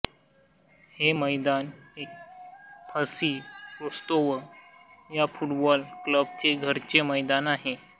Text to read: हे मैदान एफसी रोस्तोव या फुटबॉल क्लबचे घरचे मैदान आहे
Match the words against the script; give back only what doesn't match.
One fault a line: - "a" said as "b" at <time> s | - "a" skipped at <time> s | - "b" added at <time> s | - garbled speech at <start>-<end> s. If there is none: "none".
none